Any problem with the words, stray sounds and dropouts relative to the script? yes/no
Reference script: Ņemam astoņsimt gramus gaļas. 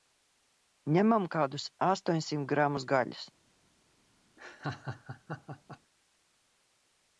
yes